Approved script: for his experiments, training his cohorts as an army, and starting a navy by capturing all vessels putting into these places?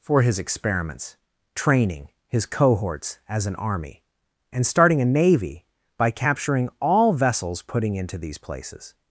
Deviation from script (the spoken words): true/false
false